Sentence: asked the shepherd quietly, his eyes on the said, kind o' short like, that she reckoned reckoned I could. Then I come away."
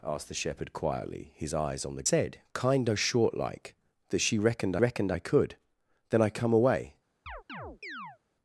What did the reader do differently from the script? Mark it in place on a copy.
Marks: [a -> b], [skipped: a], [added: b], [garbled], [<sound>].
asked the shepherd quietly, his eyes on the said, kind o' short like, that she reckoned reckoned I could. Then I come away." [chirp]